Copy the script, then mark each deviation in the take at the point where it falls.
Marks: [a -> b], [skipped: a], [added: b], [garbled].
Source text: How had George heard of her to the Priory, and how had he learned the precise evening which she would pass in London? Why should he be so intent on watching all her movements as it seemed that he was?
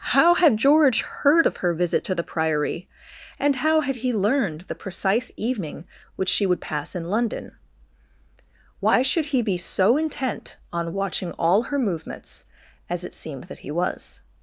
How had George heard of her [added: visit] to the Priory, and how had he learned the precise evening which she would pass in London? Why should he be so intent on watching all her movements as it seemed that he was?